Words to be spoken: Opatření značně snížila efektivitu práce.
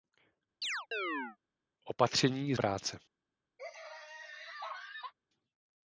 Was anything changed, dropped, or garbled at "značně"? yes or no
yes